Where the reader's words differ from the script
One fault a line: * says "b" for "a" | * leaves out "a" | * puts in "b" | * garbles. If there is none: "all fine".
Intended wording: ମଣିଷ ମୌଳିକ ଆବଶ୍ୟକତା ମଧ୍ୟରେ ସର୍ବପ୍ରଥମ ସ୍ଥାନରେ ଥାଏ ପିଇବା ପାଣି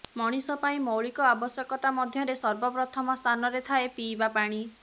* puts in "ପାଇଁ"